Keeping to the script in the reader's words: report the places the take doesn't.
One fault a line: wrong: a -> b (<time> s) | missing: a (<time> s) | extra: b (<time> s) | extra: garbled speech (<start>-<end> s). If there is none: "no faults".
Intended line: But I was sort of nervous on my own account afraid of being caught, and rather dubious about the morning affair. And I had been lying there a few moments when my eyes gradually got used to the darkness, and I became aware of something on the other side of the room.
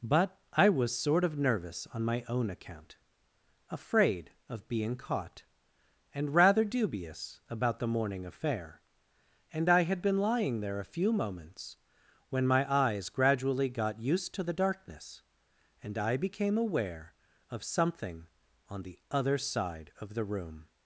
no faults